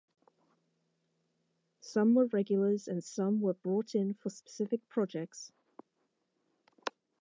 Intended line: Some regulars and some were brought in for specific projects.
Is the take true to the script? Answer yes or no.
no